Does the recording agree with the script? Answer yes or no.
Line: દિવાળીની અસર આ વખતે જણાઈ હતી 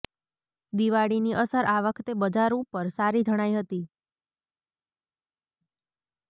no